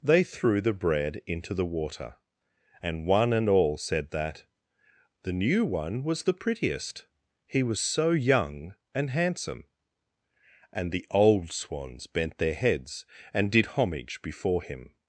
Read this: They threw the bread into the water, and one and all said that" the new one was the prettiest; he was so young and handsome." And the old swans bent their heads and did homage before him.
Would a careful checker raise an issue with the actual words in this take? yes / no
no